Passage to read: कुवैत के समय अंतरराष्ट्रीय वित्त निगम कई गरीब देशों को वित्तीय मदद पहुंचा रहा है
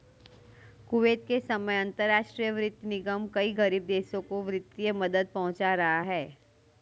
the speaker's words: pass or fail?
pass